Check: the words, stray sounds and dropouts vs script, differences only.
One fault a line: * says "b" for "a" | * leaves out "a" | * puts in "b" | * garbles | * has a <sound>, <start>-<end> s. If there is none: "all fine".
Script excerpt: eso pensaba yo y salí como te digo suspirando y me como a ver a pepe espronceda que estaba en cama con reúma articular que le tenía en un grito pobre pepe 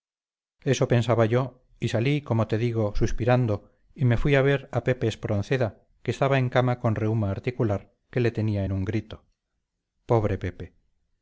* says "fui" for "como"